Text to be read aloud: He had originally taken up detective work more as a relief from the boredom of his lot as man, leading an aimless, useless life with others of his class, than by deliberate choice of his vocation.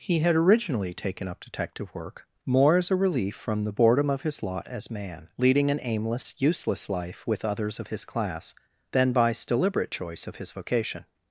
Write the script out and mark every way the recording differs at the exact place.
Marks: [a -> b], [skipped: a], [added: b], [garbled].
He had originally taken up detective work more as a relief from the boredom of his lot as man, leading an aimless, useless life with others of his class, than by deliberate choice of his vocation.